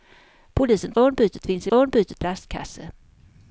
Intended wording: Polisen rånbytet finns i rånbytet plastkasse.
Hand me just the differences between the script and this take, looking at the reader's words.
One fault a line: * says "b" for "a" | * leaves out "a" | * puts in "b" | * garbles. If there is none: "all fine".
all fine